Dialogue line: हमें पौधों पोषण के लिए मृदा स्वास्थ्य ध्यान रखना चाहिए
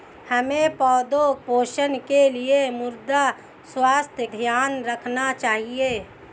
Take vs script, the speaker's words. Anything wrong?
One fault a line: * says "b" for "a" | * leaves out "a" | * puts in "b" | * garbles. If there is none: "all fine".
all fine